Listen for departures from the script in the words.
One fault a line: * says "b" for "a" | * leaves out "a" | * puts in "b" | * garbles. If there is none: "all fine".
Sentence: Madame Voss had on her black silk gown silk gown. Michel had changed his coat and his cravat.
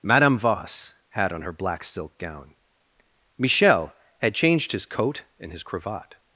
* leaves out "silk gown"